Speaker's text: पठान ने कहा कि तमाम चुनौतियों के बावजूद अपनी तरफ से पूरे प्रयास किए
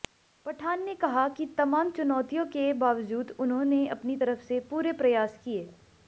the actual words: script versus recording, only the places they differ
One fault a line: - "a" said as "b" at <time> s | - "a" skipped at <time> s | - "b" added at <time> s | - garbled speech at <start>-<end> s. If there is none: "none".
- "उन्होंने" added at 3.4 s